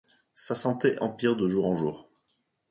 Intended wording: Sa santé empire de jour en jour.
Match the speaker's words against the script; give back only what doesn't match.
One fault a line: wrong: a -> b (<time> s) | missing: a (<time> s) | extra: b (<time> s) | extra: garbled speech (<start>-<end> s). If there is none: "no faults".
no faults